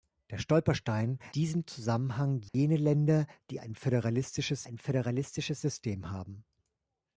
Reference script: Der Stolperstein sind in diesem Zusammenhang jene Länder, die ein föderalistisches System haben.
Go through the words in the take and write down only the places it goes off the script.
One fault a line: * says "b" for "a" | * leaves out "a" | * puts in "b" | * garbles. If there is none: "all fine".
* leaves out "sind in"
* puts in "ein föderalistisches"